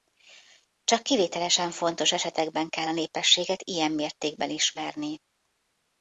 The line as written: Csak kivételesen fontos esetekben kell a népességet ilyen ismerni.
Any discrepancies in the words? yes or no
yes